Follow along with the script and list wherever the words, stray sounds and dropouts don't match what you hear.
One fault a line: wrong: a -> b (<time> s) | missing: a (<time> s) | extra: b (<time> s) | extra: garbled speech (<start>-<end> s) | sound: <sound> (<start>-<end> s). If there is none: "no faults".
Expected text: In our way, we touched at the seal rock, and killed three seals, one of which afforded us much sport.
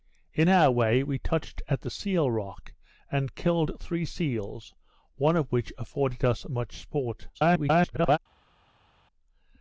extra: garbled speech (7.3-8.2 s)